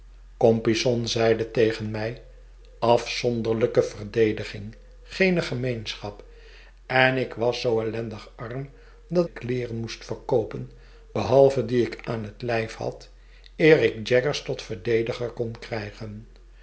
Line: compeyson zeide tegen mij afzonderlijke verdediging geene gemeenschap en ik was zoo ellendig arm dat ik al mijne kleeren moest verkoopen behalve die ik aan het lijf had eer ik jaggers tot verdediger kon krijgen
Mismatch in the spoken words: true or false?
true